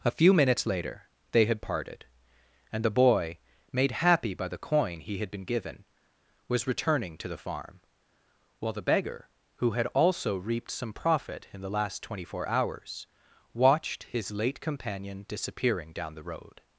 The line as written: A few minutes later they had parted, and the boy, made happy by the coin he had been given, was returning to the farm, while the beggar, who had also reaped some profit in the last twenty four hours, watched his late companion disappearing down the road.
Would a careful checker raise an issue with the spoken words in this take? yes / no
no